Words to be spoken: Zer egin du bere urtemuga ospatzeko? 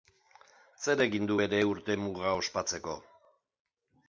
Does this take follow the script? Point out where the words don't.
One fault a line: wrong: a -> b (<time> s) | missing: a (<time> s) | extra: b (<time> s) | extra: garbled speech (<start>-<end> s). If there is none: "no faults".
no faults